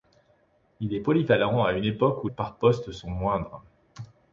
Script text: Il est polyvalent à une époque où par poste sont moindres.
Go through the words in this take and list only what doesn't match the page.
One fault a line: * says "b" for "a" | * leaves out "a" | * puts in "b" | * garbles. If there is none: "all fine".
all fine